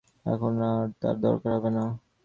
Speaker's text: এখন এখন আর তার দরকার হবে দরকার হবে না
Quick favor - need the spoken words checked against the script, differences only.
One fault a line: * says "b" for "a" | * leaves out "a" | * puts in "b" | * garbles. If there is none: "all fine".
* leaves out "এখন"
* leaves out "দরকার হবে"